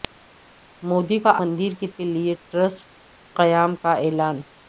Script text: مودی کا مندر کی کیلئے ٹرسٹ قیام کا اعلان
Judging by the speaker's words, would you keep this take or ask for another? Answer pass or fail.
pass